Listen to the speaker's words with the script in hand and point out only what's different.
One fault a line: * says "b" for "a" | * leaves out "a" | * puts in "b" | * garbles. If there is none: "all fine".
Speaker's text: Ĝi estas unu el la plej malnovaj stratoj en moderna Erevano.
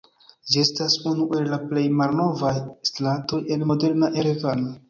all fine